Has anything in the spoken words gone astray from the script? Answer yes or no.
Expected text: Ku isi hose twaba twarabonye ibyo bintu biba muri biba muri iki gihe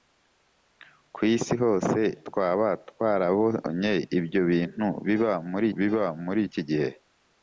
no